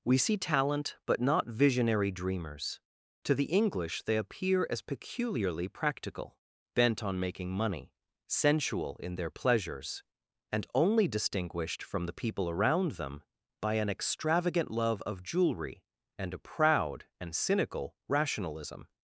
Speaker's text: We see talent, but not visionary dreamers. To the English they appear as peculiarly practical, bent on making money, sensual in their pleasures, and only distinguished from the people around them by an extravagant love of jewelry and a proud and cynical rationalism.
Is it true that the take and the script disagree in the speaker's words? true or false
false